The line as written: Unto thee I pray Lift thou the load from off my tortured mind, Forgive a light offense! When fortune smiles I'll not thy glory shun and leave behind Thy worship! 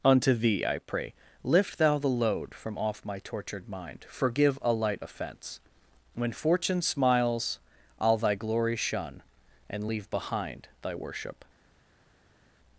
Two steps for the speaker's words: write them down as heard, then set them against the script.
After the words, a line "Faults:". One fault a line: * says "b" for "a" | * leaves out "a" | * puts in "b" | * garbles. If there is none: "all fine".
Unto thee I pray Lift thou the load from off my tortured mind, Forgive a light offense! When fortune smiles I'll thy glory shun and leave behind Thy worship!
Faults:
* leaves out "not"